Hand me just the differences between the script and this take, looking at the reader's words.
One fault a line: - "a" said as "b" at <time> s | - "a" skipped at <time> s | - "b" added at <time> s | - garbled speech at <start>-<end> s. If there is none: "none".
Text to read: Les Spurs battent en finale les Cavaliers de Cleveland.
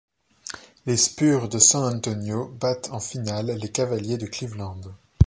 - "de San Antonio" added at 1.5 s